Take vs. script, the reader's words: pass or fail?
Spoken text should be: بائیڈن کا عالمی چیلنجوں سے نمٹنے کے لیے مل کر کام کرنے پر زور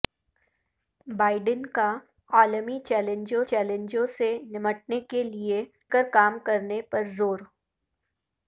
fail